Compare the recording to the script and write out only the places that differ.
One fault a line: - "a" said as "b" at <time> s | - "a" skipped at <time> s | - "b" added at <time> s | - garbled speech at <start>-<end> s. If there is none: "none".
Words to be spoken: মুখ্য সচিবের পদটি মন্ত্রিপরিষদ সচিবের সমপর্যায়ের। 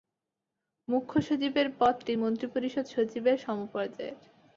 none